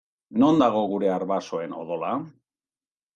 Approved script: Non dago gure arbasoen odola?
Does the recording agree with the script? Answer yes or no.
yes